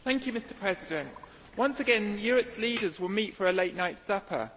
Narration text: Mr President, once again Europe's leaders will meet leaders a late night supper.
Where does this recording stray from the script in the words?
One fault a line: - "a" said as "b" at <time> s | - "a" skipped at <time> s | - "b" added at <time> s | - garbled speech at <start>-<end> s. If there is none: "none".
- "leaders" said as "for" at 3.3 s